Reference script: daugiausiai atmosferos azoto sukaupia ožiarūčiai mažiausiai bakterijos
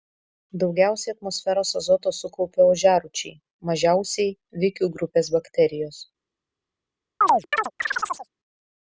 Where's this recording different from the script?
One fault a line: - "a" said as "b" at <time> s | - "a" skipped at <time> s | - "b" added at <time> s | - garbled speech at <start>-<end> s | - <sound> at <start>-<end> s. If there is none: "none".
- "vikių grupės" added at 4.7 s
- chirp at 7.2-8.3 s